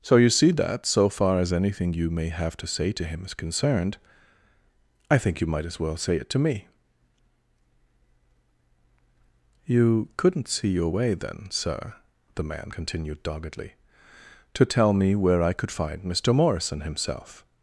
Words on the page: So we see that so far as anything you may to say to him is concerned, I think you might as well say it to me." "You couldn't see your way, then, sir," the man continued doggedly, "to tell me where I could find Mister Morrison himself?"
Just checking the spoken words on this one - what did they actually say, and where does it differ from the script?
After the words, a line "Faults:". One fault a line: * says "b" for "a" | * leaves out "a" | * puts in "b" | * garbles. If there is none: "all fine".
So you see that so far as anything you may have to say to him is concerned, I think you might as well say it to me." "You couldn't see your way, then, sir," the man continued doggedly, "to tell me where I could find Mister Morrison himself?"
Faults:
* says "you" for "we"
* puts in "have"